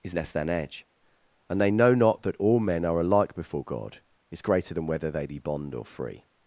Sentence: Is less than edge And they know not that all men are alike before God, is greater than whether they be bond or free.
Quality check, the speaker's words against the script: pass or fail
pass